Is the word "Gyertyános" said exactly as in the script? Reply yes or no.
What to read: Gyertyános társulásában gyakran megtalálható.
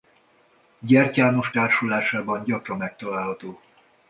yes